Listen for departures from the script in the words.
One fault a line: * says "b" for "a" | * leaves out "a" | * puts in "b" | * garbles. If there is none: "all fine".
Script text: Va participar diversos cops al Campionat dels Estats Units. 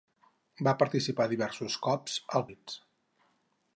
* leaves out "Campionat dels Estats"